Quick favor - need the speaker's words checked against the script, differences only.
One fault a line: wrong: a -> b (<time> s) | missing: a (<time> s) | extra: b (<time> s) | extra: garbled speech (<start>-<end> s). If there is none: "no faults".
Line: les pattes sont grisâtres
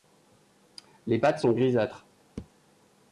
no faults